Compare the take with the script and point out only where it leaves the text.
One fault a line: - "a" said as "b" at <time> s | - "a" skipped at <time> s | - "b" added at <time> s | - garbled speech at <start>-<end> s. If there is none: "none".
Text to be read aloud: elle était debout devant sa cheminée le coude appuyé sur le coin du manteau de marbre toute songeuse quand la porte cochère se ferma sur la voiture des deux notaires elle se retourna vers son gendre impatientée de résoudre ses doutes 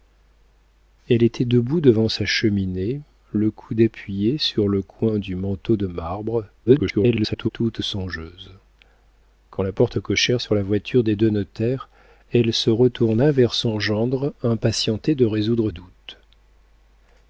- garbled speech at 6.7-7.5 s
- "se ferma" skipped at 10.4 s
- "ses" skipped at 15.7 s